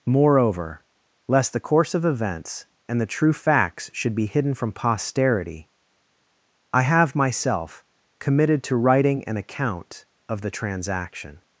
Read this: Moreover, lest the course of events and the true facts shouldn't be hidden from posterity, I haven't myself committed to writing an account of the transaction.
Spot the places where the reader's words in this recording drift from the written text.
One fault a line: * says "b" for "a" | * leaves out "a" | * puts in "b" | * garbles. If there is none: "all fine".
* says "should" for "shouldn't"
* says "have" for "haven't"